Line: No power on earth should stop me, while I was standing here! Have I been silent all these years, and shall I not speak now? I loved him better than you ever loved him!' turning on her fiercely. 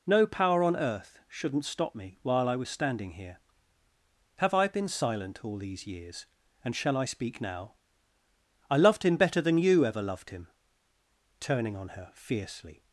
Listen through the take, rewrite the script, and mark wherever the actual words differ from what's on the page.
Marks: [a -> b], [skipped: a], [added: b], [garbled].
No power on earth [should -> shouldn't] stop me, while I was standing here! Have I been silent all these years, and shall I [skipped: not] speak now? I loved him better than you ever loved him!' turning on her fiercely.